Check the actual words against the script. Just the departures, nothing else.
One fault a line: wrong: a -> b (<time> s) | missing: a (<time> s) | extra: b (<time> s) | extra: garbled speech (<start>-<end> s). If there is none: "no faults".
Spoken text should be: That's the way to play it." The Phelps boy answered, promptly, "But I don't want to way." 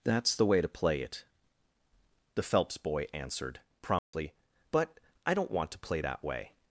extra: play that (5.8 s)